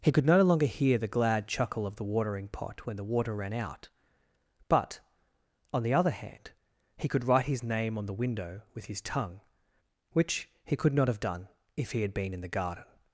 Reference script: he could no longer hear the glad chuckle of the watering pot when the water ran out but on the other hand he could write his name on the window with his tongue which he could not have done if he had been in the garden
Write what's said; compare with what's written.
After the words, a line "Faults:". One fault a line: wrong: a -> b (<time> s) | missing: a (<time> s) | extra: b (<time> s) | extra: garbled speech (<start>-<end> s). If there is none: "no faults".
he could no longer hear the glad chuckle of the watering pot when the water ran out but on the other hand he could write his name on the window with his tongue which he could not have done if he had been in the garden
Faults:
no faults